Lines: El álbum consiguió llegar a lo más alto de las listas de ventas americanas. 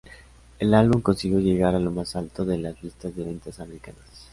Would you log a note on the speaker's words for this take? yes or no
no